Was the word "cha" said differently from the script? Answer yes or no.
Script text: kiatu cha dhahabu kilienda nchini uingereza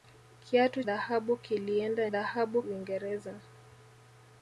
yes